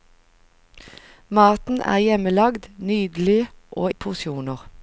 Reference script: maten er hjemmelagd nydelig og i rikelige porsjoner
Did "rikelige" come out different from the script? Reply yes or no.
yes